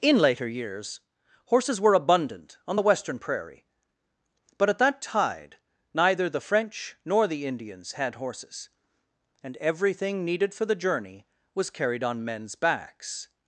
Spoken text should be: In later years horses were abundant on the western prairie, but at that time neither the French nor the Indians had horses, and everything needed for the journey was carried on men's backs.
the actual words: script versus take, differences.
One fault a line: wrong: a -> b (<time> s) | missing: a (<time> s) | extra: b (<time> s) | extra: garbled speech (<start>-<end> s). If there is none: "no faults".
wrong: time -> tide (5.0 s)